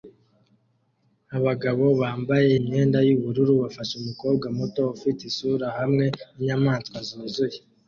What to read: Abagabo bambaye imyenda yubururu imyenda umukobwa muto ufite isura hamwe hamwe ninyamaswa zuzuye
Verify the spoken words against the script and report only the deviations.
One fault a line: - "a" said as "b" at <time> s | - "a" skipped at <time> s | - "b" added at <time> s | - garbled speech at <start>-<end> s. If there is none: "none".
- "imyenda" said as "bafashe" at 3.6 s
- "hamwe" skipped at 6.0 s